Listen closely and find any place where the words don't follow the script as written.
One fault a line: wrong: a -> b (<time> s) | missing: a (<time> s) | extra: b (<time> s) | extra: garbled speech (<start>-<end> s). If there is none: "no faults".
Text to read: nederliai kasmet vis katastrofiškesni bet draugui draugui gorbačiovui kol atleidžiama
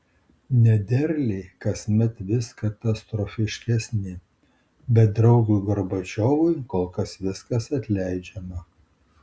missing: draugui (5.6 s)
extra: kas viskas (7.0 s)